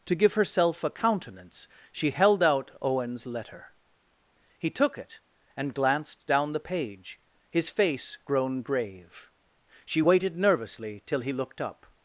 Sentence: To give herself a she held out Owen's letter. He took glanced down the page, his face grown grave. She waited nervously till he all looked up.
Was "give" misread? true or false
false